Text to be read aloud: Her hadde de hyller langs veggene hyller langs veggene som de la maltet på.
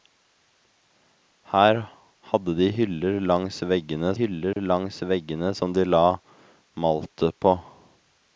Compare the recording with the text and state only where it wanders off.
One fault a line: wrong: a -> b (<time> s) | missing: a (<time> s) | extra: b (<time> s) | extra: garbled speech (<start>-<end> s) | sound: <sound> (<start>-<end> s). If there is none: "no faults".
sound: dropout (4.5-4.6 s)